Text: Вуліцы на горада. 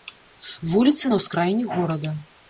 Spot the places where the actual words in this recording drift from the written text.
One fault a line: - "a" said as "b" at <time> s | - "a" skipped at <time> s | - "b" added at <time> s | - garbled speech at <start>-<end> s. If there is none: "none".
- "ўскраіне" added at 1.2 s